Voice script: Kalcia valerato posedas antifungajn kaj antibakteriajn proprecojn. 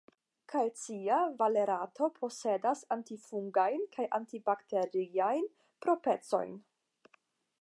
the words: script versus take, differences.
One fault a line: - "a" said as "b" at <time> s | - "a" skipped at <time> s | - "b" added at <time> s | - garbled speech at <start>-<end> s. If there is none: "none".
none